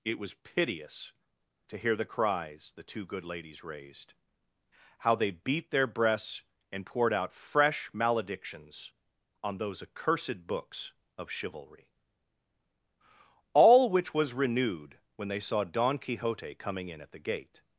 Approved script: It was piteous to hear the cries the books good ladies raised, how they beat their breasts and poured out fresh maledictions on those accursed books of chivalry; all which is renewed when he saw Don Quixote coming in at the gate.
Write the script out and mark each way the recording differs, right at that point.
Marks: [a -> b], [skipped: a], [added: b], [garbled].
It was piteous to hear the cries the [books -> two] good ladies raised, how they beat their breasts and poured out fresh maledictions on those accursed books of chivalry; all which [is -> was] renewed when [he -> they] saw Don Quixote coming in at the gate.